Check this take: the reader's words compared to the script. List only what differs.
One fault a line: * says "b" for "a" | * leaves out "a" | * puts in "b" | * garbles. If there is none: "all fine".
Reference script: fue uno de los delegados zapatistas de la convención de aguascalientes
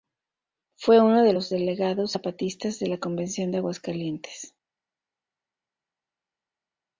all fine